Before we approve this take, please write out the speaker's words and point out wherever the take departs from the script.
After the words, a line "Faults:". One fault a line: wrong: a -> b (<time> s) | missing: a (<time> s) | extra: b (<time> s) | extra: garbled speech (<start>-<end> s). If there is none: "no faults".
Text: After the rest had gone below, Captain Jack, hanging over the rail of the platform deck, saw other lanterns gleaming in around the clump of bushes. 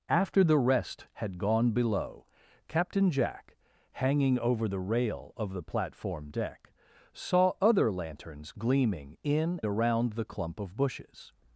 After the rest had gone below, Captain Jack, hanging over the rail of the platform deck, saw other lanterns gleaming in around the clump of bushes.
Faults:
no faults